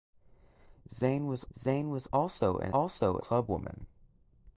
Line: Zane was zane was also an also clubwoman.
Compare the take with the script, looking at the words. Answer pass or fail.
pass